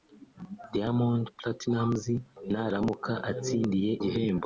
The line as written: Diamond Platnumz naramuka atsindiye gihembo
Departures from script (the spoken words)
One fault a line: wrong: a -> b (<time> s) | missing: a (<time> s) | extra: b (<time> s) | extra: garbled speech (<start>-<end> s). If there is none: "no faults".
no faults